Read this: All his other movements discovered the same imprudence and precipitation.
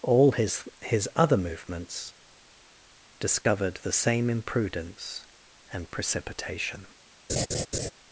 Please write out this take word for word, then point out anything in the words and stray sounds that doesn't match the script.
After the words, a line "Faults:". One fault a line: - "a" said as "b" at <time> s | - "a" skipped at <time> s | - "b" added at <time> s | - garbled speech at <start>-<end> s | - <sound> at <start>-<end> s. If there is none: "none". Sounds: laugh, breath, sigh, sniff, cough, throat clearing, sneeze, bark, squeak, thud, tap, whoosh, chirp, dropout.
All his his other movements discovered the same imprudence and precipitation.
Faults:
- "his" added at 0.8 s
- dropout at 3.4-3.5 s
- laugh at 7.3-7.9 s